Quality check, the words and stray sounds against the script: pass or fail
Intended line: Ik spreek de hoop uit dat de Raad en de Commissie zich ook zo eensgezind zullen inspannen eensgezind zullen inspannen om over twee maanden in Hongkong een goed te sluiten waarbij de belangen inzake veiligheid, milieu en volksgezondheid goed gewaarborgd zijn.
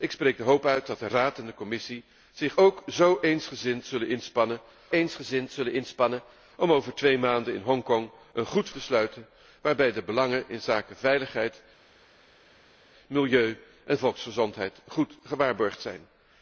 pass